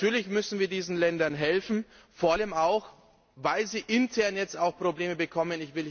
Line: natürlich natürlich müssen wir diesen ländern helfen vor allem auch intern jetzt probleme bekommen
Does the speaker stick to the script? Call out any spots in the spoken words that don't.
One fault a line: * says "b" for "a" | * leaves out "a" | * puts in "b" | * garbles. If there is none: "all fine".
* leaves out "natürlich"
* puts in "weil sie"
* puts in "auch"